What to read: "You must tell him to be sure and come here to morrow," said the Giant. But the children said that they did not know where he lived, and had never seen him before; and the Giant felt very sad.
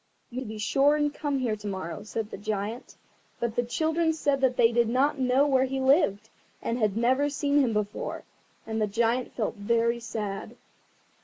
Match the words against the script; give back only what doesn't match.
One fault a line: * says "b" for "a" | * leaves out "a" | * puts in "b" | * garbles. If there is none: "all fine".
* leaves out "must tell him"